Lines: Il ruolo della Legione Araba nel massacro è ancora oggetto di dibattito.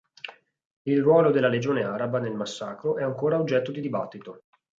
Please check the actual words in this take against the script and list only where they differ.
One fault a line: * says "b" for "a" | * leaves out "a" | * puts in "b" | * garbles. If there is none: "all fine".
all fine